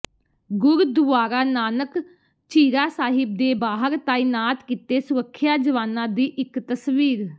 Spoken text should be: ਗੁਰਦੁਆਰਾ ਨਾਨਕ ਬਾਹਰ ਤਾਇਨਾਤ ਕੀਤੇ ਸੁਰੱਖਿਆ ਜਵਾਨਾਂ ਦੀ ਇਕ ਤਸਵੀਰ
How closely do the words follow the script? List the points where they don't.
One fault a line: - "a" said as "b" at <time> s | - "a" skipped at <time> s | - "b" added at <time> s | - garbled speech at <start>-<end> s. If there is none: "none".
- "ਝੀਰਾ ਸਾਹਿਬ ਦੇ" added at 2.5 s